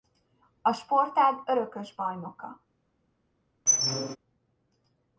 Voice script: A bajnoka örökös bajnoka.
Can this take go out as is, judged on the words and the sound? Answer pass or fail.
fail